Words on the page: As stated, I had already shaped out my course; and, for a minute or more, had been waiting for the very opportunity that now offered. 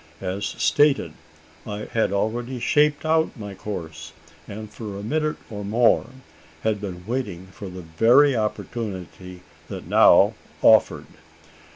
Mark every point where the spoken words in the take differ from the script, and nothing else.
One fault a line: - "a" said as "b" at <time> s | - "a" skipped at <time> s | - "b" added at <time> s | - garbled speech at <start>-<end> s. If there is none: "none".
none